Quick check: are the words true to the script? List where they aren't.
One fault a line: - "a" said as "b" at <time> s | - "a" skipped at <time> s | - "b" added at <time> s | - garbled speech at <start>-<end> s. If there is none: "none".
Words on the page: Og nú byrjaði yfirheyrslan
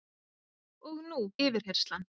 - "byrjaði" skipped at 1.2 s